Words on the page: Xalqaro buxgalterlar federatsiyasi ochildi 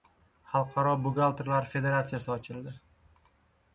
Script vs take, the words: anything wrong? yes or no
no